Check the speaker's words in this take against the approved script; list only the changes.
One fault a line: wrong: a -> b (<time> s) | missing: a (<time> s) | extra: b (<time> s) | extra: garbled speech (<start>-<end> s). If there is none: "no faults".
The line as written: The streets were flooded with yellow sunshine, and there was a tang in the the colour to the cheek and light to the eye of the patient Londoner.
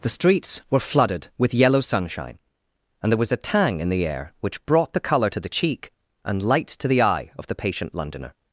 extra: air which brought (4.1 s)